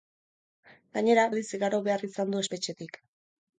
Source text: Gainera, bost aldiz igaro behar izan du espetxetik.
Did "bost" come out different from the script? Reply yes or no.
yes